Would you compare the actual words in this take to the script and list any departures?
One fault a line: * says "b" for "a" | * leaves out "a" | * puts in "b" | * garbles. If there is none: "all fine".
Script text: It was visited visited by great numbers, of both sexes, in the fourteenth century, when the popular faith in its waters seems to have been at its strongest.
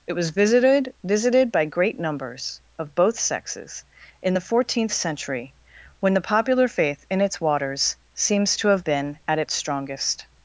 all fine